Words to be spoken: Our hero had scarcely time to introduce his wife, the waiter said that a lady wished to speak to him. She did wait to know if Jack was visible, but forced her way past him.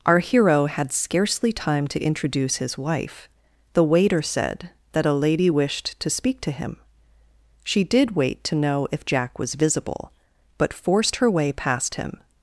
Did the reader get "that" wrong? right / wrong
right